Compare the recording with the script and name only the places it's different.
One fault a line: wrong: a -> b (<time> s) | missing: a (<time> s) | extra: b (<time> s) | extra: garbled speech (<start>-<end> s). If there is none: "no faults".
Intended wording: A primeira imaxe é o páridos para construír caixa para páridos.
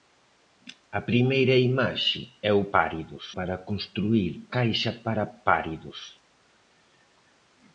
no faults